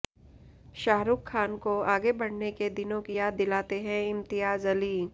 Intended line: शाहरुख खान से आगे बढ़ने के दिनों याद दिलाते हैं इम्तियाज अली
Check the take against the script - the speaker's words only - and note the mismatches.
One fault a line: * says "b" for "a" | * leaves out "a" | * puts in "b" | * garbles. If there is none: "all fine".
* says "को" for "से"
* puts in "की"